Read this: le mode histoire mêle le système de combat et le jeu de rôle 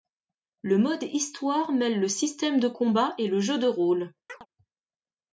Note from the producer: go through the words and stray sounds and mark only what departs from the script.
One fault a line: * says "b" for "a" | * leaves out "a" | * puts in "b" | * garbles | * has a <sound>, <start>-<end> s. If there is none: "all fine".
* has a chirp, 4.3-4.5 s